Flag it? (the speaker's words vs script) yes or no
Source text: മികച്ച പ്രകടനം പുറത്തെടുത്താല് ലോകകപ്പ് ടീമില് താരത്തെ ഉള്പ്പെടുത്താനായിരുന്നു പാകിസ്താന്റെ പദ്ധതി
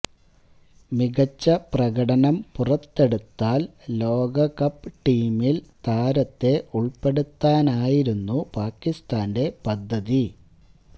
no